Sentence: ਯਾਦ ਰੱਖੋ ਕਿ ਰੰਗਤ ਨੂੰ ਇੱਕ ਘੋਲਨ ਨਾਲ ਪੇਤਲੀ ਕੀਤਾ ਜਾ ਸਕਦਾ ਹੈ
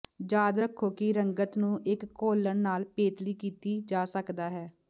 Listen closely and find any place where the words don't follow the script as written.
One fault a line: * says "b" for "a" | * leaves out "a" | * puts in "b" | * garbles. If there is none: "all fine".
all fine